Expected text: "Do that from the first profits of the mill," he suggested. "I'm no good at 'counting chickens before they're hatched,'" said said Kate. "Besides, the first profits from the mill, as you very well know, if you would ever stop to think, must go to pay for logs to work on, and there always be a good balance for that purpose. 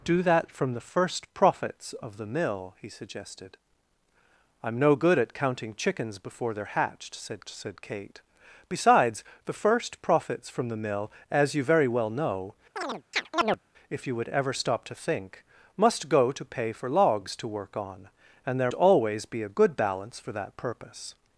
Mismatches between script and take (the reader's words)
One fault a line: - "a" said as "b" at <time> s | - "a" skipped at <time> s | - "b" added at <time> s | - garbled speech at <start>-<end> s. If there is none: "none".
none